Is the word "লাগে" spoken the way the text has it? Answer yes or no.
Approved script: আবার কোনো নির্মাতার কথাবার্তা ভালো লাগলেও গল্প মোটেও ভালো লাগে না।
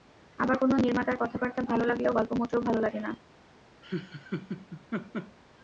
yes